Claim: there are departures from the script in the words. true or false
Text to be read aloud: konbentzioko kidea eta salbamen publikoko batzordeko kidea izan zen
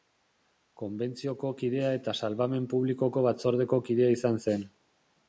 false